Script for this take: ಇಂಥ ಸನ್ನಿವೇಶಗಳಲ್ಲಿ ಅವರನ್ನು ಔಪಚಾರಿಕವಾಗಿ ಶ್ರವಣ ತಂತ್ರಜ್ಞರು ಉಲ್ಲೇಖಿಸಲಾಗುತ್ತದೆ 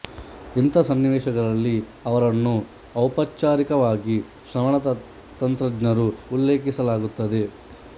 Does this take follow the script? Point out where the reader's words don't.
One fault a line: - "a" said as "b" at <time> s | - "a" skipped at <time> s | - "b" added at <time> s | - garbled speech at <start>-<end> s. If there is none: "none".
none